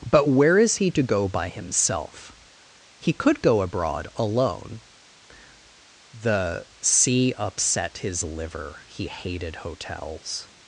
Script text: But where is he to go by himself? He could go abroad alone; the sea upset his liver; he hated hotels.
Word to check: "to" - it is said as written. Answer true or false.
true